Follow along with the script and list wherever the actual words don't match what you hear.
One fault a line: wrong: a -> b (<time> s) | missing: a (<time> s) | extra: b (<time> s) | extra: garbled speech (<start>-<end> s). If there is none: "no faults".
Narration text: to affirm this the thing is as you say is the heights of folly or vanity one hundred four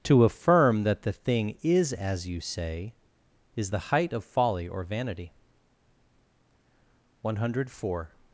wrong: this -> that (0.8 s)
wrong: heights -> height (3.9 s)